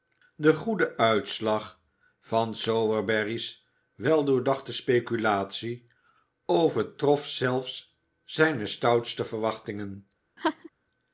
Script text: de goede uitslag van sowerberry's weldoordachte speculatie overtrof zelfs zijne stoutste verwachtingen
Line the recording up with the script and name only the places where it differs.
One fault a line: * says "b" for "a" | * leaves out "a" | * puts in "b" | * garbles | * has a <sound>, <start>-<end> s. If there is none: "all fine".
* has a laugh, 10.4-10.7 s